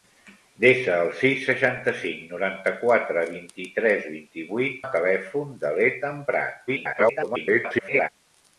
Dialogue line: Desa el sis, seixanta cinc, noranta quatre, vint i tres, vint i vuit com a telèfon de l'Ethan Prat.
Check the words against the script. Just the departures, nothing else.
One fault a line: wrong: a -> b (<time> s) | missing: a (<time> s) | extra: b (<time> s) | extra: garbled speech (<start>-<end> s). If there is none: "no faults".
missing: com (4.8 s)
extra: garbled speech (6.7-8.1 s)